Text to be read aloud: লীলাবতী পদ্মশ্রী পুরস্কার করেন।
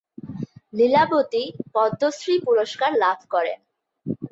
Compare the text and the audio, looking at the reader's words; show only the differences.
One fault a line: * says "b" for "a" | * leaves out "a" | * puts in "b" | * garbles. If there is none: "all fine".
* puts in "লাভ"